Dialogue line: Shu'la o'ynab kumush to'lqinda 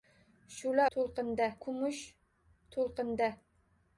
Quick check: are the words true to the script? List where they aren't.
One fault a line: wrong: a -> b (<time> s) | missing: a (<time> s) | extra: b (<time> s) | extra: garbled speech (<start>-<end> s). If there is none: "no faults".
wrong: o'ynab -> to'lqinda (1.0 s)